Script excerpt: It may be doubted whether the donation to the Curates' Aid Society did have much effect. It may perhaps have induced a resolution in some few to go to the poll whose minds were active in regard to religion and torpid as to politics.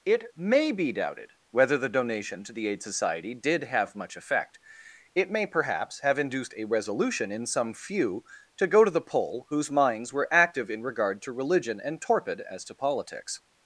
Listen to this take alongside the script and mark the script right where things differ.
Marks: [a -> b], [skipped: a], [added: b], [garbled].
It may be doubted whether the donation to the [skipped: Curates'] Aid Society did have much effect. It may perhaps have induced a resolution in some few to go to the poll whose minds were active in regard to religion and torpid as to politics.